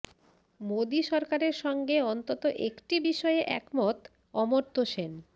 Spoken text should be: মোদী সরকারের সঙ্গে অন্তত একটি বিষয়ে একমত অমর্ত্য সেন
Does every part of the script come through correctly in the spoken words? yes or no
yes